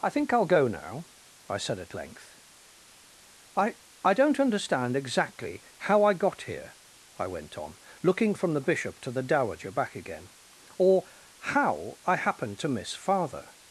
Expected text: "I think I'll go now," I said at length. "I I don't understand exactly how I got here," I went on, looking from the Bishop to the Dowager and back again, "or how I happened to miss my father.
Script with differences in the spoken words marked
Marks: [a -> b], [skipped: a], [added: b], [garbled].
"I think I'll go now," I said at length. "I I don't understand exactly how I got here," I went on, looking from the Bishop to the Dowager [skipped: and] back again, "or how I happened to miss [skipped: my] father.